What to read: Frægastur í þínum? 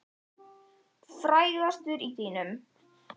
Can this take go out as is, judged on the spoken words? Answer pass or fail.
pass